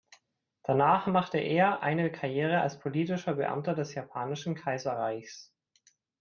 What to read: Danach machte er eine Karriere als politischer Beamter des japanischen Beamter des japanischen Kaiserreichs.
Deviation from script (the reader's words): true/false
true